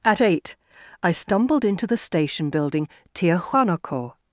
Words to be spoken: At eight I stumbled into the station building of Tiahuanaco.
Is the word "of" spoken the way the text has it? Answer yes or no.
no